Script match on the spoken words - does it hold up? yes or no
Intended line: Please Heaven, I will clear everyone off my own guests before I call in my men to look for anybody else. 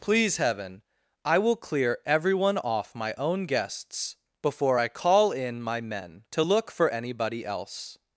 yes